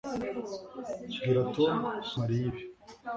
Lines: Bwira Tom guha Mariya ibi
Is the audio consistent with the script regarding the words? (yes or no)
no